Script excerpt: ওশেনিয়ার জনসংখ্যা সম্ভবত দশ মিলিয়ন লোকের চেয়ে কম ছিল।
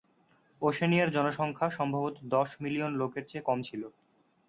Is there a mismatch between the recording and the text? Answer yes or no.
no